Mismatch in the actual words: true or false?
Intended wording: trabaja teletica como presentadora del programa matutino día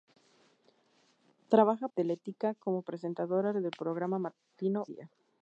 false